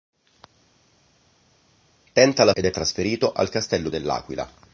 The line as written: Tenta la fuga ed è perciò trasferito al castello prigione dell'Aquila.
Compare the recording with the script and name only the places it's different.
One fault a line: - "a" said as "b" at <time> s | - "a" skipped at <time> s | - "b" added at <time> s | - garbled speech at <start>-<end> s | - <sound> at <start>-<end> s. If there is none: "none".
- "fuga" skipped at 2.5 s
- "perciò" skipped at 2.7 s
- "prigione" skipped at 3.9 s